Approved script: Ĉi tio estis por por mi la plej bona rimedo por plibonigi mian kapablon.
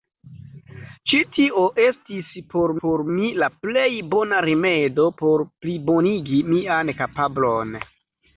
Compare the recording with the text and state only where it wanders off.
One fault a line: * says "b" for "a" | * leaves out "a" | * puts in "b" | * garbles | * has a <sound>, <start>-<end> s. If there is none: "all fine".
all fine